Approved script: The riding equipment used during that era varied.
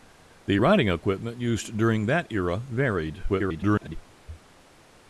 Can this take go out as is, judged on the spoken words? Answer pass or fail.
fail